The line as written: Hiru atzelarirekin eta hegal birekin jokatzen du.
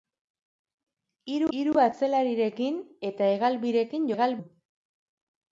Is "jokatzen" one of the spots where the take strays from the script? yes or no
yes